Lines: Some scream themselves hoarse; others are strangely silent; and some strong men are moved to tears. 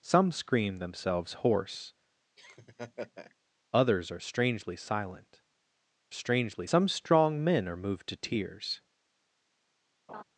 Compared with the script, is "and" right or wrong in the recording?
wrong